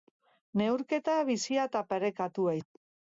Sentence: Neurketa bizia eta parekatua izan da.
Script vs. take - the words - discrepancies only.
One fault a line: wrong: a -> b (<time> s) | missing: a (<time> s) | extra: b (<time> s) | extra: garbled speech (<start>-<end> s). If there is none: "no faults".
missing: izan (2.6 s)